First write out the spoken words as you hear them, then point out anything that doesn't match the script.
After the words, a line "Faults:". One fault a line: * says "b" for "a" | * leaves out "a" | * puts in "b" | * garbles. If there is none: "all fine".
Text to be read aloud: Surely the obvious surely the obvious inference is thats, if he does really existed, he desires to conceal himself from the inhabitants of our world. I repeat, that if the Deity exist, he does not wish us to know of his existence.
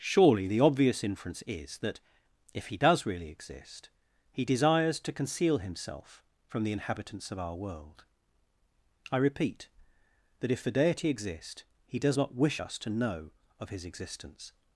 Surely the obvious inference is that, if he does really exist, he desires to conceal himself from the inhabitants of our world. I repeat, that if the Deity exist, he does not wish us to know of his existence.
Faults:
* leaves out "surely the obvious"
* says "that" for "thats"
* says "exist" for "existed"